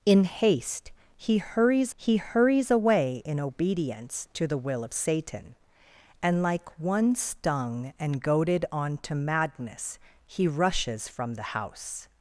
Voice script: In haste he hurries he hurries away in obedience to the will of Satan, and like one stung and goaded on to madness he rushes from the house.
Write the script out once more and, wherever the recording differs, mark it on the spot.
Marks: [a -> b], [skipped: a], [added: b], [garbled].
In haste he hurries he hurries away in obedience to the will of Satan, and like one stung and goaded on to madness he rushes from the house.